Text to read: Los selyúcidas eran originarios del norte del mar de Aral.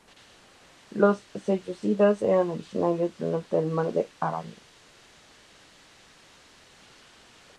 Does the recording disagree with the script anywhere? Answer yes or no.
no